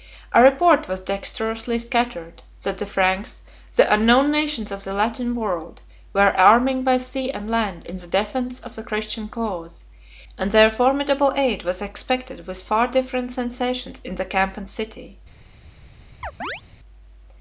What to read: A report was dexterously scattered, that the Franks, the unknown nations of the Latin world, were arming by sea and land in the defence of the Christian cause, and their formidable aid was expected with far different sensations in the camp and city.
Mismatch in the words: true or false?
false